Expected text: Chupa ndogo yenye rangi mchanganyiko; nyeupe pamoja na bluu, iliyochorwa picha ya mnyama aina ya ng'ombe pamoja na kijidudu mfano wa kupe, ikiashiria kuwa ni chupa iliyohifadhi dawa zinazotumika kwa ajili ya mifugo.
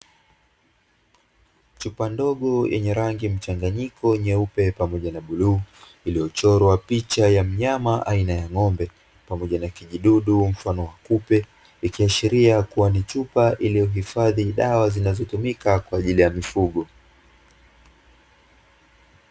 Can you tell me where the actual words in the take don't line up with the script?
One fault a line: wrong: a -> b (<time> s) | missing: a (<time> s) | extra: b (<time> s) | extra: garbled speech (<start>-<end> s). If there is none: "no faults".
no faults